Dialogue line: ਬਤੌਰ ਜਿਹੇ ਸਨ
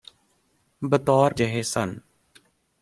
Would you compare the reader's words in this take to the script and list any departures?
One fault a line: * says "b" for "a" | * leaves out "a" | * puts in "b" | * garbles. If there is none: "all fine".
all fine